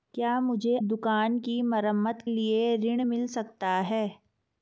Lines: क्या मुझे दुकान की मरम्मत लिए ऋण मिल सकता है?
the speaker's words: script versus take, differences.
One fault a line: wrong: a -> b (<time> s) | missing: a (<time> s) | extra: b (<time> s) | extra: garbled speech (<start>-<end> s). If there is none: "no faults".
no faults